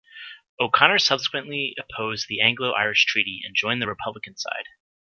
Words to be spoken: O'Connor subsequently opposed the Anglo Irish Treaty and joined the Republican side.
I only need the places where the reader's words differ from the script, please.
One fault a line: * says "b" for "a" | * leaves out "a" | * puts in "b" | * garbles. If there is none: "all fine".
all fine